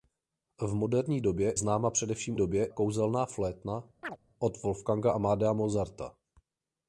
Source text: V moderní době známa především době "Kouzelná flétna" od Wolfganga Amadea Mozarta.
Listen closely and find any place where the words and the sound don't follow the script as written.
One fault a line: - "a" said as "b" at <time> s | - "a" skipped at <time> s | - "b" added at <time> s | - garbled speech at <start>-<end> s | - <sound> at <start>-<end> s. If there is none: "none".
- chirp at 4.0-4.2 s